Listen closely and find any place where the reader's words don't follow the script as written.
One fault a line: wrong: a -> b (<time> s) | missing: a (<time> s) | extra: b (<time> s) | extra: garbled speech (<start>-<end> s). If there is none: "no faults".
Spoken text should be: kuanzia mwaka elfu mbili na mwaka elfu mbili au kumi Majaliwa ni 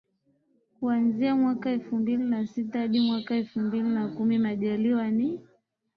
extra: sita hadi (2.5 s)
wrong: au -> na (3.9 s)